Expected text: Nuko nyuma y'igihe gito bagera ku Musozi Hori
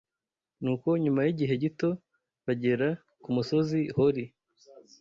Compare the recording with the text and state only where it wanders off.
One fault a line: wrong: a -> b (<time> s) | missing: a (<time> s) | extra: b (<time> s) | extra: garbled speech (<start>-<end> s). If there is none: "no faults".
no faults